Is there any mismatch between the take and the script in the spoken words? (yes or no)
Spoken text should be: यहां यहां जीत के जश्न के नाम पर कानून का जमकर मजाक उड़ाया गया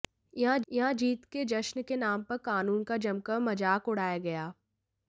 no